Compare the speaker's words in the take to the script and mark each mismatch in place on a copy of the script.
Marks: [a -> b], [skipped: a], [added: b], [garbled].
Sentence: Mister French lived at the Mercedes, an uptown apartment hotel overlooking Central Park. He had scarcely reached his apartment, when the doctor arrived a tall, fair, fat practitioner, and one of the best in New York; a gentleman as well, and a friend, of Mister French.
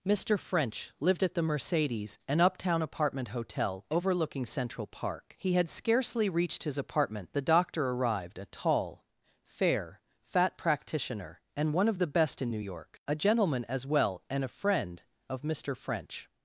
Mister French lived at the Mercedes, an uptown apartment hotel overlooking Central Park. He had scarcely reached his apartment, [skipped: when] the doctor arrived a tall, fair, fat practitioner, and one of the best in New York; a gentleman as well, and a friend, of Mister French.